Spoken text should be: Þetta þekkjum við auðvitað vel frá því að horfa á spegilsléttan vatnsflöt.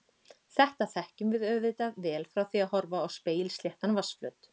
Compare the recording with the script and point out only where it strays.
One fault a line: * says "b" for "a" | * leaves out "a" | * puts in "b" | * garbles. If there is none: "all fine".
all fine